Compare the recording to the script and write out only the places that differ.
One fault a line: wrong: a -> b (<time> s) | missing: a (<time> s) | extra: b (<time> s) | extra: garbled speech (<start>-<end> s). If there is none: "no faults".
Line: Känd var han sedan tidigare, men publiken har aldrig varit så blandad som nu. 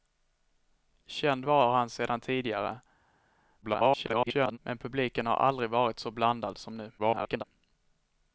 extra: garbled speech (3.6-4.6 s)
extra: garbled speech (7.0-7.4 s)